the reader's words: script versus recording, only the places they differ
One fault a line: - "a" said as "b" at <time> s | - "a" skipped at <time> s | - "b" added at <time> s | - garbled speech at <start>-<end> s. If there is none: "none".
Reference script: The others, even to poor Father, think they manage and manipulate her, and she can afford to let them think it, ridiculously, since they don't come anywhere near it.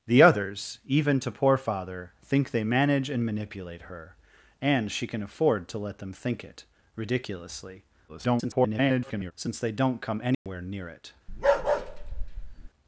- garbled speech at 8.1-9.3 s